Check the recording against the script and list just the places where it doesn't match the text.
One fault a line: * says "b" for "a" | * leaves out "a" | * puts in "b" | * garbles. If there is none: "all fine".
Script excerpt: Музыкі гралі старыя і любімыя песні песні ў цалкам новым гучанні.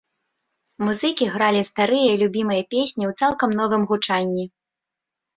* leaves out "песні"